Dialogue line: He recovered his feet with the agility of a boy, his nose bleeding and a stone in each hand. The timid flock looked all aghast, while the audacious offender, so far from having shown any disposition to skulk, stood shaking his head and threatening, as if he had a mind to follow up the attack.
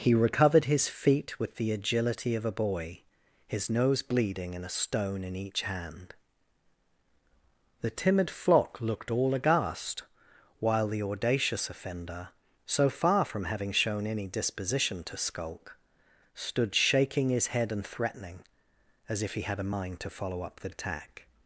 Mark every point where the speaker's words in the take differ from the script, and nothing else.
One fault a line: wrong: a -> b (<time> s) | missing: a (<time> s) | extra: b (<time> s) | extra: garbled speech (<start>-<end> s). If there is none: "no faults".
no faults